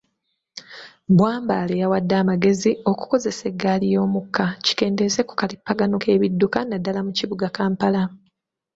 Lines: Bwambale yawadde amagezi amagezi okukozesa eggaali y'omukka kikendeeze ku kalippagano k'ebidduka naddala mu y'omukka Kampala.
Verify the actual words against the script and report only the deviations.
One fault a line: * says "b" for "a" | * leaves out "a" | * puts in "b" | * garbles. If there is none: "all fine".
* leaves out "amagezi"
* says "kibuga" for "y'omukka"